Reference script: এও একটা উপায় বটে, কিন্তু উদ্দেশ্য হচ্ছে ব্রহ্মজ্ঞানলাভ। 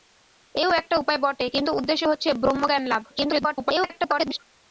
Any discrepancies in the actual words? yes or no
yes